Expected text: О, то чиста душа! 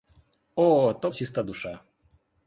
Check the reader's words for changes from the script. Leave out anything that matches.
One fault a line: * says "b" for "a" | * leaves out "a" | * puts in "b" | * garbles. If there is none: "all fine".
all fine